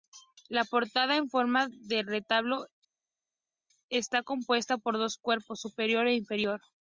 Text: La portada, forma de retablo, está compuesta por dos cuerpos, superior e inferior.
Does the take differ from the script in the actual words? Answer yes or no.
yes